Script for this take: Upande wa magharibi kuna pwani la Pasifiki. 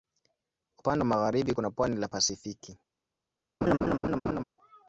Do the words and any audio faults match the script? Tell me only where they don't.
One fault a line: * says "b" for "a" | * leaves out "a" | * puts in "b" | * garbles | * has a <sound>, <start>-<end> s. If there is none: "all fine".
* has a laugh, 3.6-4.4 s